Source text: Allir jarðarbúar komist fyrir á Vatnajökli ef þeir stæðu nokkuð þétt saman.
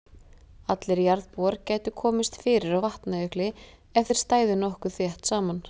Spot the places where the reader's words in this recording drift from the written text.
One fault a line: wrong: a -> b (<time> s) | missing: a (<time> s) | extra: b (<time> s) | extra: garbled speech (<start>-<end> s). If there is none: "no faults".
extra: gætu (1.7 s)